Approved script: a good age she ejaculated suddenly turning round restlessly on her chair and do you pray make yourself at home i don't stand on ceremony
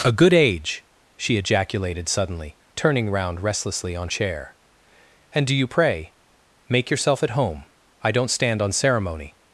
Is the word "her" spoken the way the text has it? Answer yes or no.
no